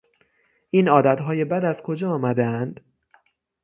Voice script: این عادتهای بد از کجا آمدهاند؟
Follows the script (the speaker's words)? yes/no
yes